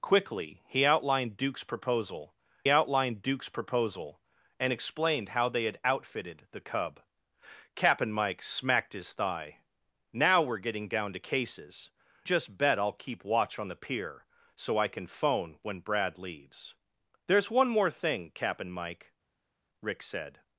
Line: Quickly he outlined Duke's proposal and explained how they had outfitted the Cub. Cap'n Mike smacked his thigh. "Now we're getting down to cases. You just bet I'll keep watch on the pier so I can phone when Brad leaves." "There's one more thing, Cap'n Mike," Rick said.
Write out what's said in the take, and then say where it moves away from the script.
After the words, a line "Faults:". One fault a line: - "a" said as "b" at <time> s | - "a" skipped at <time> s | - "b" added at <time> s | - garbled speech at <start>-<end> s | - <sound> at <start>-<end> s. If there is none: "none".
Quickly he outlined Duke's proposal outlined Duke's proposal and explained how they had outfitted the Cub. Cap'n Mike smacked his thigh. "Now we're getting down to cases. Just bet I'll keep watch on the pier so I can phone when Brad leaves." "There's one more thing, Cap'n Mike," Rick said.
Faults:
- "outlined Duke's proposal" added at 2.7 s
- "You" skipped at 11.9 s